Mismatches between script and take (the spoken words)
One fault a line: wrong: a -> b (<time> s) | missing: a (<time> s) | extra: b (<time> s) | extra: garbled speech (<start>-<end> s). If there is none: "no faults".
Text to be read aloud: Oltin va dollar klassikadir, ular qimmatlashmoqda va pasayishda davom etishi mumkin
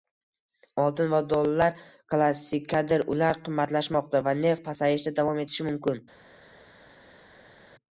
extra: neft (4.4 s)